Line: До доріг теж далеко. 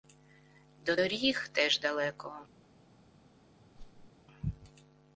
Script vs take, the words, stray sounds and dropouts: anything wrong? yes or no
yes